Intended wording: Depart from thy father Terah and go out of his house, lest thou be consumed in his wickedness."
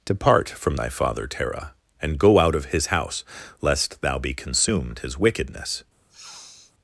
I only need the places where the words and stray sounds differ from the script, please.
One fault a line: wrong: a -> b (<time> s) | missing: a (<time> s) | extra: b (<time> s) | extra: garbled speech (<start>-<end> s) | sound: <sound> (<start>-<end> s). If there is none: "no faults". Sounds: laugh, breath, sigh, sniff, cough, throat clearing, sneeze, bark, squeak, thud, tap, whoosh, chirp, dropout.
missing: in (5.0 s)
sound: sniff (6.1-6.7 s)